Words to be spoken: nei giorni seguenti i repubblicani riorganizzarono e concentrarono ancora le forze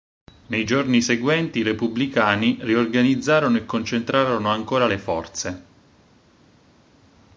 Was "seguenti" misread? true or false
false